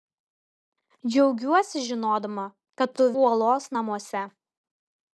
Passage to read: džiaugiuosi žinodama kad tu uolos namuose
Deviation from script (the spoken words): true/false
false